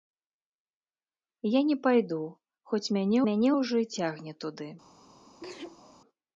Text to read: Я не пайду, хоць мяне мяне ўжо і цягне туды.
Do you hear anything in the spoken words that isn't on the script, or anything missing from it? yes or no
no